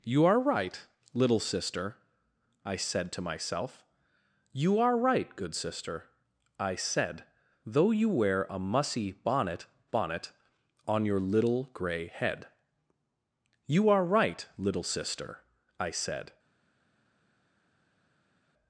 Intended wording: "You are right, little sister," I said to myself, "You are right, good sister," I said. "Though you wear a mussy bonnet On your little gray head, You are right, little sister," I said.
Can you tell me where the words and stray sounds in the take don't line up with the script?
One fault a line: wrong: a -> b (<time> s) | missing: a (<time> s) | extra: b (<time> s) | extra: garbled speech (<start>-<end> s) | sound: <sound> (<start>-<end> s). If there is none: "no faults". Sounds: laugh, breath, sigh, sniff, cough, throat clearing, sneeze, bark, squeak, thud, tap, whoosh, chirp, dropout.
extra: bonnet (9.9 s)